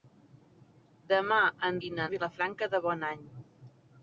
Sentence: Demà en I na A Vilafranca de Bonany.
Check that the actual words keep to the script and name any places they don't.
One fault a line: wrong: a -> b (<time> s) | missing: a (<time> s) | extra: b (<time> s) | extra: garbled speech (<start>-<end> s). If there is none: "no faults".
no faults